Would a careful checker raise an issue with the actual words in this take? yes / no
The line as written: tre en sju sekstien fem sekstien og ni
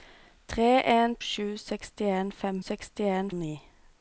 no